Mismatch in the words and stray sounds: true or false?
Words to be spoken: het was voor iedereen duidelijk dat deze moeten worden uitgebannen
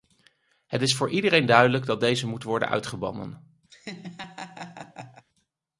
true